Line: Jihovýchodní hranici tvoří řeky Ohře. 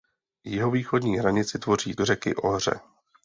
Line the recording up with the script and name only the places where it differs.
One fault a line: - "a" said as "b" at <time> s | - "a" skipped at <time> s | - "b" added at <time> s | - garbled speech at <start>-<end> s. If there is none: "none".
none